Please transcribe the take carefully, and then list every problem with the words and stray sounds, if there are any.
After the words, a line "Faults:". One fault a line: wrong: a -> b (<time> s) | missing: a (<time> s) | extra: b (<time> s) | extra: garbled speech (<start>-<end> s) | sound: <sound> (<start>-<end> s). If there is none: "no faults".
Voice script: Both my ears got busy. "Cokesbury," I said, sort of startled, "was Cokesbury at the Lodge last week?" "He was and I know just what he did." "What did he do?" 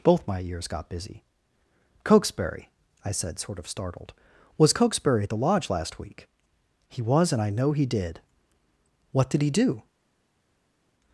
Both my ears got busy. "Cokesbury," I said, sort of startled, "was Cokesbury at the Lodge last week?" "He was and I know he did." "What did he do?"
Faults:
missing: just what (7.7 s)